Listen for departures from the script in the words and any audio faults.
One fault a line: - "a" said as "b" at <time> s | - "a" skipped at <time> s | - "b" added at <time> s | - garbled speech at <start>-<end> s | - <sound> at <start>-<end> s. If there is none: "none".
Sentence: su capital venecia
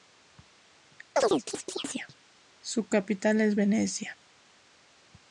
- chirp at 1.2-2.2 s
- "es" added at 3.4 s